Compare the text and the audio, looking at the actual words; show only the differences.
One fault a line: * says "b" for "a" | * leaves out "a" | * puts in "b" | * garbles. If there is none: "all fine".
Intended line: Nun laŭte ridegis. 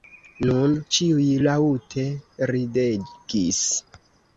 * puts in "ĉiuj"